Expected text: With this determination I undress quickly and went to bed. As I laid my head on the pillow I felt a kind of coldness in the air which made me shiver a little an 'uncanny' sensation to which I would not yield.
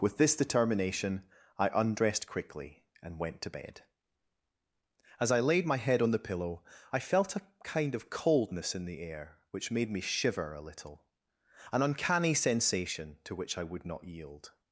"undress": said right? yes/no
no